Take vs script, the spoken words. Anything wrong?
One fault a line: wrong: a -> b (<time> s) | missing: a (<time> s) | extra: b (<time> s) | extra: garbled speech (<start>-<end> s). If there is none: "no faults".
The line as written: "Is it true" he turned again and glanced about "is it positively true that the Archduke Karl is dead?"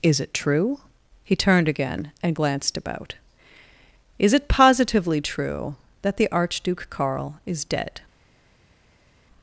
no faults